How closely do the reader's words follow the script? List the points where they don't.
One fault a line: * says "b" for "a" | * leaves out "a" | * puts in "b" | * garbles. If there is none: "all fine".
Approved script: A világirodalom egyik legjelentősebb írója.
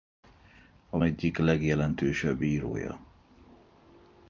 * leaves out "világirodalom"